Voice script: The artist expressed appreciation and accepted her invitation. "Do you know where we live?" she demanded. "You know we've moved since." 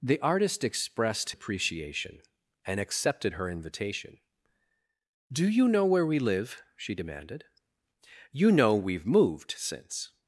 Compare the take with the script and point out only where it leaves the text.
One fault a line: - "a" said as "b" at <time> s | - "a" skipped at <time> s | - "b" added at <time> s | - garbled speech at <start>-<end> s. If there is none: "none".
none